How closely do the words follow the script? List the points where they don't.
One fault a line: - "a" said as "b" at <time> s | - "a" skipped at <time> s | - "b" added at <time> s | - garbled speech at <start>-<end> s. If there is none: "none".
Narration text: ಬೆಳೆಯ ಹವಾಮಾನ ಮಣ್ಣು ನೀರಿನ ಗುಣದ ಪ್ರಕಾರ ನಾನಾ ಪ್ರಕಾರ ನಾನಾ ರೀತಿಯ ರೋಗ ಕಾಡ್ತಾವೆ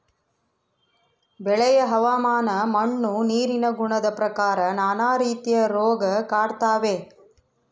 - "ಪ್ರಕಾರ ನಾನಾ" skipped at 5.1 s